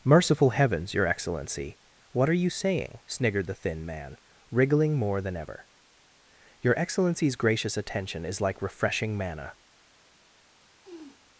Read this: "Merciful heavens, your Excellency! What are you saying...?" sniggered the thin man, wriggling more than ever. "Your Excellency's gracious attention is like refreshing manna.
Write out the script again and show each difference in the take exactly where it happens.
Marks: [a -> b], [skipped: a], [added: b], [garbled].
"Merciful heavens, your Excellency! What are you saying...?" sniggered the thin man, wriggling more than ever. "Your Excellency's gracious attention is like refreshing manna.